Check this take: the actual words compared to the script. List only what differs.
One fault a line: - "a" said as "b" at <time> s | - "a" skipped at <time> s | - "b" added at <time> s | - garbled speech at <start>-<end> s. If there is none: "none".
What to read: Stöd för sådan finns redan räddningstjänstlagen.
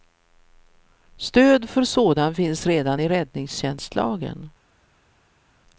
- "i" added at 3.0 s